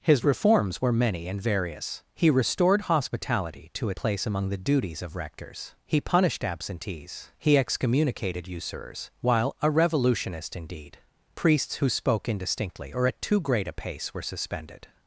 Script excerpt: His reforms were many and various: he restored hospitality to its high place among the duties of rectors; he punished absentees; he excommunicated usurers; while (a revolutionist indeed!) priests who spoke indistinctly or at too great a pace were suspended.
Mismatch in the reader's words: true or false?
true